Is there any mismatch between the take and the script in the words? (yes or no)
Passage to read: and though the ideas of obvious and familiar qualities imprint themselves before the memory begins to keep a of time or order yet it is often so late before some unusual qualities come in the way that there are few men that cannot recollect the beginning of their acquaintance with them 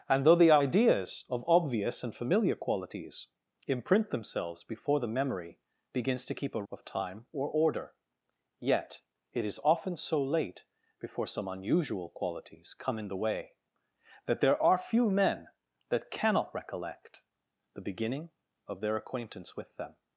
no